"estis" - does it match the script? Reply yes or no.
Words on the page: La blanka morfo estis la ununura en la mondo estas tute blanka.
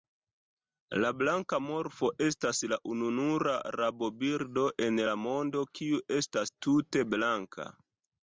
no